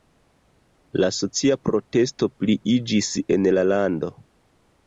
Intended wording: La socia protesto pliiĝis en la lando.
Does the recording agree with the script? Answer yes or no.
yes